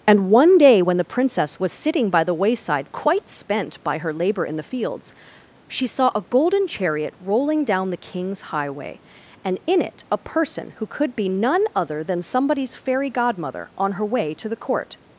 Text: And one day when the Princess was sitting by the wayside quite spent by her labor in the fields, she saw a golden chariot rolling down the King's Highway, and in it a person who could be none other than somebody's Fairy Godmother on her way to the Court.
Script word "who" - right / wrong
right